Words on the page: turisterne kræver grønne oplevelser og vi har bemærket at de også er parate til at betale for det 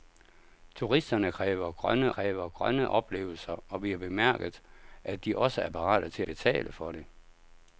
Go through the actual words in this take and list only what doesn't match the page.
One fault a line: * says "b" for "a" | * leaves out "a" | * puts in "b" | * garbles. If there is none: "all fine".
* puts in "kræver grønne"
* leaves out "at"